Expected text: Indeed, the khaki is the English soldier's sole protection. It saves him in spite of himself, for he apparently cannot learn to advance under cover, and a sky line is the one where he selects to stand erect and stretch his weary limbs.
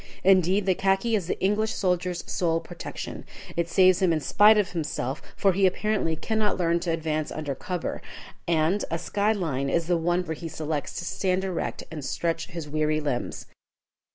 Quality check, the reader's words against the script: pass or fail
pass